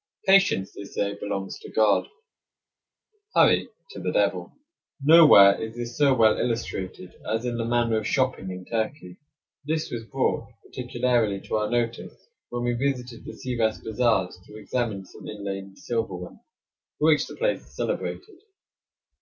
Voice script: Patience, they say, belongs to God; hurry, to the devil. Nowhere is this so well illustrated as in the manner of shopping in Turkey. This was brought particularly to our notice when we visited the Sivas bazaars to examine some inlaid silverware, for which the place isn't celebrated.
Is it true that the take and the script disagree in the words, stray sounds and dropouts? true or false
true